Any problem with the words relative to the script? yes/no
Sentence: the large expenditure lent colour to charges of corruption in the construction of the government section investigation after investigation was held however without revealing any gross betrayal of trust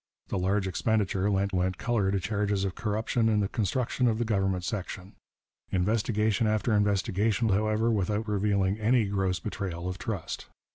yes